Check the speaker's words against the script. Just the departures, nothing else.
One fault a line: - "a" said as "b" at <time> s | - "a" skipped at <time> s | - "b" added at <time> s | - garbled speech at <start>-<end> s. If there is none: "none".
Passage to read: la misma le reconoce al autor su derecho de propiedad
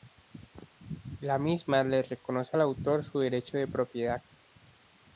none